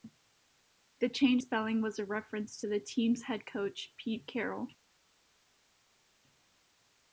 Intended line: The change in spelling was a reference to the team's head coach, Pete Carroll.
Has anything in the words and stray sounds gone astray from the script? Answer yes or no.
yes